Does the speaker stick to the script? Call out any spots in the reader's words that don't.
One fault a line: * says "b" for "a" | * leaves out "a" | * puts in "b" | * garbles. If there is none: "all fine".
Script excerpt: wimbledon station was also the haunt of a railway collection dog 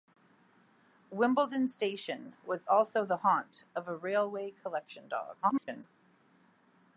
* garbles